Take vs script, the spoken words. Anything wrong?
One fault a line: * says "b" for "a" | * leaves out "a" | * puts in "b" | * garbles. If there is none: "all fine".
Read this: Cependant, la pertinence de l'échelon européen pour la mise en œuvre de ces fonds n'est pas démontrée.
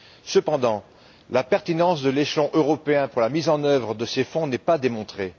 all fine